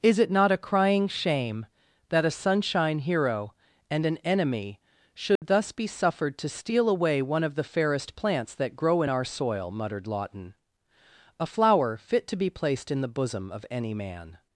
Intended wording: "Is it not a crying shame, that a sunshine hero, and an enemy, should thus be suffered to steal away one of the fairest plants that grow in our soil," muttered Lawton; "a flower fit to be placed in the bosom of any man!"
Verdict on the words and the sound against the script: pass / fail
fail